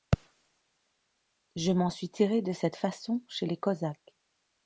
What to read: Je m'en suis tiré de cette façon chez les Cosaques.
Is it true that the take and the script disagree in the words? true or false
false